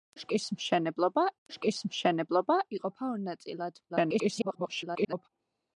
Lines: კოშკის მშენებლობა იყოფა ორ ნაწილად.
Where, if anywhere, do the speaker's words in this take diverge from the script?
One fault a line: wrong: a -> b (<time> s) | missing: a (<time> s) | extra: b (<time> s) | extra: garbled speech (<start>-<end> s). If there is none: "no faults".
extra: კოშკის მშენებლობა (1.5 s)
extra: garbled speech (3.9-5.3 s)